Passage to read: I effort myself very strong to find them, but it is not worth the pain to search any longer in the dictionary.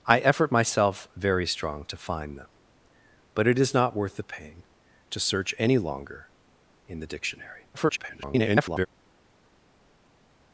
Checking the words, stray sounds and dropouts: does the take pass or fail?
fail